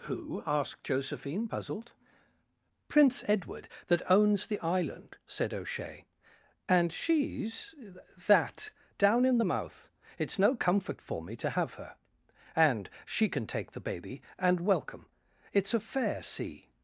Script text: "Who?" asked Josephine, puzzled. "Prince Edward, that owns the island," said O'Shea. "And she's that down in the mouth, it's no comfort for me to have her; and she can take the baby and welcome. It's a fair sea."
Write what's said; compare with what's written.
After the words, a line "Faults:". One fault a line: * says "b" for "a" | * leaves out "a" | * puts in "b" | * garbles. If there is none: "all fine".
"Who?" asked Josephine, puzzled. "Prince Edward, that owns the island," said O'Shea. "And she's that down in the mouth, it's no comfort for me to have her; and she can take the baby and welcome. It's a fair sea."
Faults:
all fine